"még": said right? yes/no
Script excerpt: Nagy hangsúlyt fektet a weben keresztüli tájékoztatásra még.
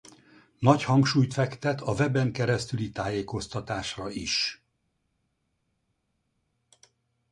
no